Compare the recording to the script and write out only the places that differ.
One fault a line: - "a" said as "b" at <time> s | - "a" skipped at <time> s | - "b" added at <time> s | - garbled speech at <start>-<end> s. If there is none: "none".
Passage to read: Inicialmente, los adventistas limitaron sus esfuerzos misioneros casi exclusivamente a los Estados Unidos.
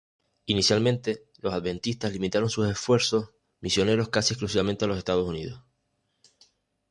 none